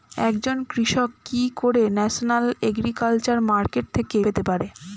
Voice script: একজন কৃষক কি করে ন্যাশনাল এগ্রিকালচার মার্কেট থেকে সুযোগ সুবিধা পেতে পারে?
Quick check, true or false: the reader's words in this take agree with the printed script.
false